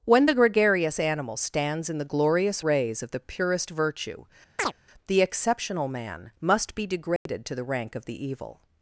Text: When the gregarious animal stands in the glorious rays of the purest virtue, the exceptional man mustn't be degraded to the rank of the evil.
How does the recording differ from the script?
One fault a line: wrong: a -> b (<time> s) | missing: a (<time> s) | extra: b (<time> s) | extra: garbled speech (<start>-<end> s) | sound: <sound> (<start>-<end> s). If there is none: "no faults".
sound: chirp (4.6-4.7 s)
wrong: mustn't -> must (6.4 s)
sound: dropout (7.2-7.3 s)